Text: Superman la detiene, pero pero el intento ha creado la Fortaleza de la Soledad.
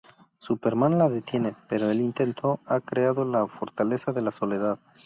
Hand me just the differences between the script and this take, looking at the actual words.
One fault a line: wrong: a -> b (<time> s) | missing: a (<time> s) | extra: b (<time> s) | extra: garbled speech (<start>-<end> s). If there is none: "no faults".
missing: pero (1.9 s)